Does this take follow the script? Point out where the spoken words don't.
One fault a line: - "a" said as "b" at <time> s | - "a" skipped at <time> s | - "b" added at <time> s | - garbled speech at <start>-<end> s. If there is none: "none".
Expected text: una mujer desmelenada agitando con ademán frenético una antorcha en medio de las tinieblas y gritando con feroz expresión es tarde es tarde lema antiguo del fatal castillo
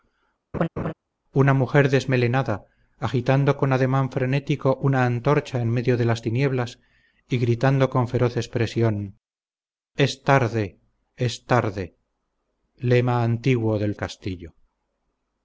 - "fatal" skipped at 14.0 s